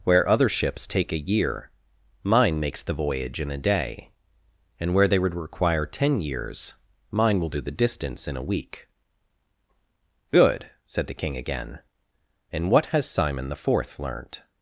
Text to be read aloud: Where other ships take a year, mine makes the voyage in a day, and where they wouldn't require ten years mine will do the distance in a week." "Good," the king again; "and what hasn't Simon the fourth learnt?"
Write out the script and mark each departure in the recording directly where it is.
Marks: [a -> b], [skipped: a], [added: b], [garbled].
Where other ships take a year, mine makes the voyage in a day, and where they [wouldn't -> would] require ten years mine will do the distance in a week." "Good," [added: said] the king again; "and what [hasn't -> has] Simon the fourth learnt?"